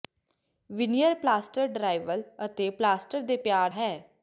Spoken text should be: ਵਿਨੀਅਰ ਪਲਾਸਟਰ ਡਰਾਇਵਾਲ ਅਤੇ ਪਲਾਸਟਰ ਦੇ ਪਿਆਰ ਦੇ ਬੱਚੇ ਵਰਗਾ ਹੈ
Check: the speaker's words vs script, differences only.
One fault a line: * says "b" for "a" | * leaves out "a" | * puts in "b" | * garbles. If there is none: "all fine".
* leaves out "ਦੇ ਬੱਚੇ ਵਰਗਾ"